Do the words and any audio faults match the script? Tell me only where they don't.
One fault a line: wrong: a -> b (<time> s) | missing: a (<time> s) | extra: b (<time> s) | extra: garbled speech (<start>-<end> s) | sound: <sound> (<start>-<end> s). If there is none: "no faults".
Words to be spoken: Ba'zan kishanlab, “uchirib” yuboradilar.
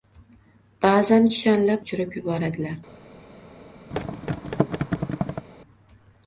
sound: thud (3.9-5.5 s)